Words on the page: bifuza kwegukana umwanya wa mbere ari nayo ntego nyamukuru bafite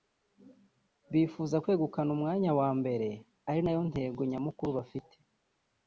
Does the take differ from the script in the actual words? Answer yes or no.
no